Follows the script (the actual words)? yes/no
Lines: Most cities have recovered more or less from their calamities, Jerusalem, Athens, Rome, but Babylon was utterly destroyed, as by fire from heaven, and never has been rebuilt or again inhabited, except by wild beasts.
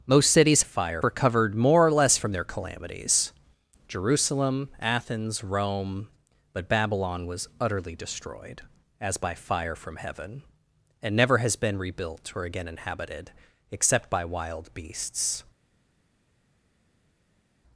no